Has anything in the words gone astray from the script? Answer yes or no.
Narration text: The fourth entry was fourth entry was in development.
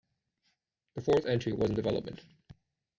yes